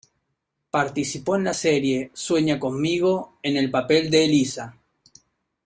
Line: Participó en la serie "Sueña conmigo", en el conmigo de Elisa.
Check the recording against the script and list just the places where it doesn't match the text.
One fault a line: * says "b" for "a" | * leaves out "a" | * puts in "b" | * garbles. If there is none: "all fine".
* says "papel" for "conmigo"